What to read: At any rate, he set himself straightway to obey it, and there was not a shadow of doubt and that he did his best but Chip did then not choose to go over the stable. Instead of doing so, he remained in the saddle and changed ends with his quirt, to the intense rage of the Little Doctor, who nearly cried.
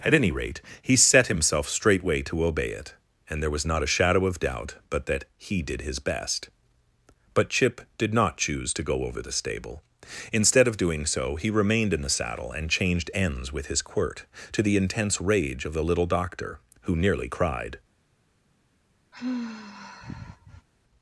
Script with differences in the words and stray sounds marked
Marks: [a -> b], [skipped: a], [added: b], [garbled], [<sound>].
At any rate, he set himself straightway to obey it, and there was not a shadow of doubt [and -> but] that he did his best but Chip did [skipped: then] not choose to go over the stable. Instead of doing so, he remained in the saddle and changed ends with his quirt, to the intense rage of the Little Doctor, who nearly cried. [sigh]